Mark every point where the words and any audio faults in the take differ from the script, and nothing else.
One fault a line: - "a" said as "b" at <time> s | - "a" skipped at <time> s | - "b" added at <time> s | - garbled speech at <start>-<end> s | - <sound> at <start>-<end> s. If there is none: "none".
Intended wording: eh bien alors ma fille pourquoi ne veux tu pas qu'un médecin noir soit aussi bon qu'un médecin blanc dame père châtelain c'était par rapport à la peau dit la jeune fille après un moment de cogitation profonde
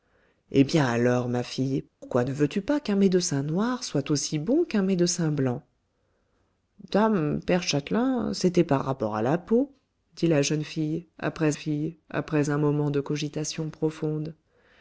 - dropout at 1.9-2.0 s
- "fille après" added at 11.5 s